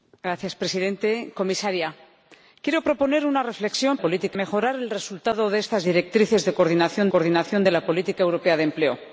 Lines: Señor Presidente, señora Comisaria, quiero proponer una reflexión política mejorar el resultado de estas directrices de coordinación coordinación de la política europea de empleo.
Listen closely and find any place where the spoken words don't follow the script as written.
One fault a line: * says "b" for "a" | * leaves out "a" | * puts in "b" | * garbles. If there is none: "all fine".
all fine